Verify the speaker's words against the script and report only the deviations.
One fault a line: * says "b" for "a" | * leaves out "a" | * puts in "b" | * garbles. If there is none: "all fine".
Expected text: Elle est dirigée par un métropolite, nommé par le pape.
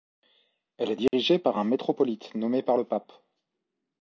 all fine